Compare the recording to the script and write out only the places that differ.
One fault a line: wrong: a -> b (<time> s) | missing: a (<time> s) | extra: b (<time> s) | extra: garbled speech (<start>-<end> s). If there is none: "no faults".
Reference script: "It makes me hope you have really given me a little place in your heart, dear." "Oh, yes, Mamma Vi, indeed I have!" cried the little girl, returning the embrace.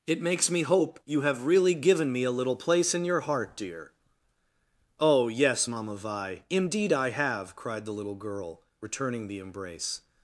no faults